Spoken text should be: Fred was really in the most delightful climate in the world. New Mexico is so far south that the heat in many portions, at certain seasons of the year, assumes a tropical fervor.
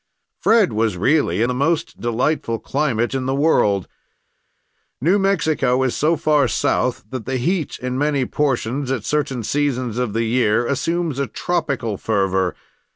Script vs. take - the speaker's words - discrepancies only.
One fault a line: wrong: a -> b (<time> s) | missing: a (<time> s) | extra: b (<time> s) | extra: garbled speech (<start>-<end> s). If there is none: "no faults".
missing: in (1.4 s)